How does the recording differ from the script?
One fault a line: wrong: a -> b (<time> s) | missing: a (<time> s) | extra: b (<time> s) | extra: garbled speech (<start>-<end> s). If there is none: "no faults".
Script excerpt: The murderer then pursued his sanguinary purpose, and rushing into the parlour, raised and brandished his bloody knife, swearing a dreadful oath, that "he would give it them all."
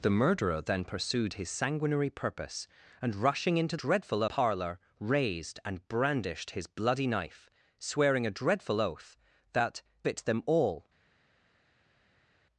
wrong: the -> dreadful (3.8 s)
missing: he would give (9.8 s)